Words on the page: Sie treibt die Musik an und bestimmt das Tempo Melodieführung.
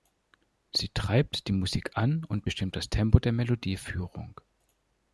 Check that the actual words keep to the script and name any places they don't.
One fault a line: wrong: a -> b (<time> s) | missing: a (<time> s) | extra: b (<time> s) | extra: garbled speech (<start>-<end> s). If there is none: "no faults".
extra: der (3.2 s)